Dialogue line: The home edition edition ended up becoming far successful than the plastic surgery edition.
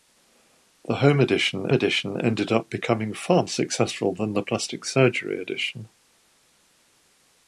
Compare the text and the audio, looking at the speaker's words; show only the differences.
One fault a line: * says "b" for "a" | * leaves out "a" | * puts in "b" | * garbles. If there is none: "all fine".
all fine